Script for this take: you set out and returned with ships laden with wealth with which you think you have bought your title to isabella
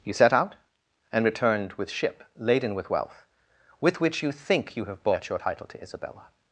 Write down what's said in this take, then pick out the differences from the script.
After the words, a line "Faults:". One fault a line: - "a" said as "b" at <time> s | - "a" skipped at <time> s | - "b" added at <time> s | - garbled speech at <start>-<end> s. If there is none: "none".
you set out and returned with ship laden with wealth with which you think you have bought your title to isabella
Faults:
- "ships" said as "ship" at 1.9 s